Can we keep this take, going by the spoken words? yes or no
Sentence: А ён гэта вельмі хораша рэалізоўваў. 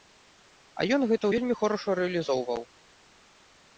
yes